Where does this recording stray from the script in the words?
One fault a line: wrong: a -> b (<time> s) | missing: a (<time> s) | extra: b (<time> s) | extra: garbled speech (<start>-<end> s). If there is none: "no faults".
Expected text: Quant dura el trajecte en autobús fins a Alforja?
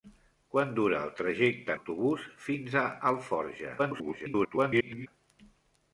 missing: en (1.8 s)
extra: garbled speech (3.8-5.1 s)